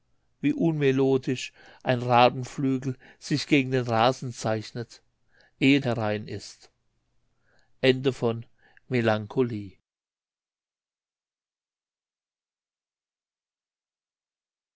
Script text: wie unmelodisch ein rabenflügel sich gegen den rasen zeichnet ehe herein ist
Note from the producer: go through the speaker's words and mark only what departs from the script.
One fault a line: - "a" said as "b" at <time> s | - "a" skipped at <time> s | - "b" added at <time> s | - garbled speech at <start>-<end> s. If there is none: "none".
none